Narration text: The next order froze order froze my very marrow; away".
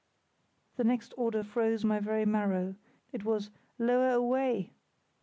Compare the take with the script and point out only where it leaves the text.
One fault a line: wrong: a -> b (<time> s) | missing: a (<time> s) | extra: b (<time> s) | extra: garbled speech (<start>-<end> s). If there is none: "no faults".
missing: order froze (1.8 s)
extra: it was lower (3.1 s)